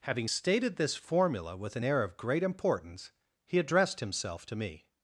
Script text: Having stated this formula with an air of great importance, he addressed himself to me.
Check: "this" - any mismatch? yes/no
no